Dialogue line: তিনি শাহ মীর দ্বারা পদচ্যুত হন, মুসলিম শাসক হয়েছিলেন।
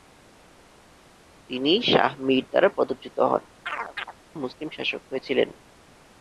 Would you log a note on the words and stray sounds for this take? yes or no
yes